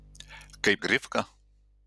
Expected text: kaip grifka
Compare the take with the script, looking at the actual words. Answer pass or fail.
pass